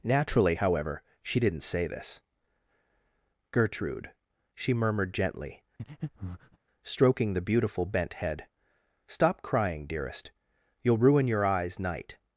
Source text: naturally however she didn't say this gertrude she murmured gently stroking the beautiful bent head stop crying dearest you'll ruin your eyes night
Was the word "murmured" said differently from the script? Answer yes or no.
no